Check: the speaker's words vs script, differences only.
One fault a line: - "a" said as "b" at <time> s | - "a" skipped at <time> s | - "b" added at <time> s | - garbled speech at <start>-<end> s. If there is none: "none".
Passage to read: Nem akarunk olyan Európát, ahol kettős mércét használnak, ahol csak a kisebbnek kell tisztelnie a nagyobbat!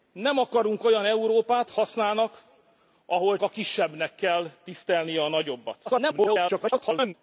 - "ahol kettős mércét" skipped at 1.7 s
- "csak" skipped at 3.4 s
- garbled speech at 5.9-7.1 s